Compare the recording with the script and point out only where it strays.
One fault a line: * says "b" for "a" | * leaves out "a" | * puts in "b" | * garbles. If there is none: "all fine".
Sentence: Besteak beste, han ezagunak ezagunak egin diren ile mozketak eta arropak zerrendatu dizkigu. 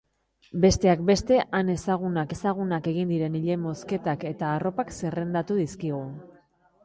all fine